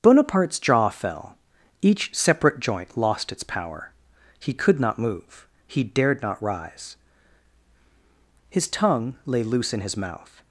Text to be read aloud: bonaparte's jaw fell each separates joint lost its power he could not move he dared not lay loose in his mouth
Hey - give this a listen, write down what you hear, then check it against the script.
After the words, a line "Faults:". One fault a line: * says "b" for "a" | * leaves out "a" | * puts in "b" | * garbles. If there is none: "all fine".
bonaparte's jaw fell each separate joint lost its power he could not move he dared not rise his tongue lay loose in his mouth
Faults:
* says "separate" for "separates"
* puts in "rise his tongue"